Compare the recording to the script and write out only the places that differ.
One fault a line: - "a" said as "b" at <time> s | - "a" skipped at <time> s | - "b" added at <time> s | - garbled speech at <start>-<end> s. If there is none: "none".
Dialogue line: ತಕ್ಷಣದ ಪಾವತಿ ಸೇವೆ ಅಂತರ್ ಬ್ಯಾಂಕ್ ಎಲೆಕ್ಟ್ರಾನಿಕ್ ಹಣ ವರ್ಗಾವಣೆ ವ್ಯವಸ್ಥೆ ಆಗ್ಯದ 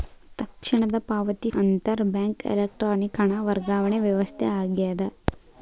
- "ಸೇವೆ" skipped at 1.5 s